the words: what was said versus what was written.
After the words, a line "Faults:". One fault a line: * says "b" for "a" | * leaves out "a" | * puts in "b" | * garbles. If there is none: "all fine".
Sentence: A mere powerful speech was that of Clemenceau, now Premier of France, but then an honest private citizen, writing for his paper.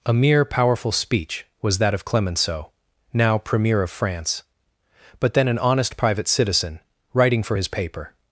A mere powerful speech was that of Clemenceau, now Premier of France, but then an honest private citizen, writing for his paper.
Faults:
all fine